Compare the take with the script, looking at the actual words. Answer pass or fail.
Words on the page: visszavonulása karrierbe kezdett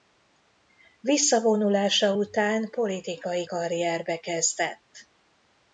fail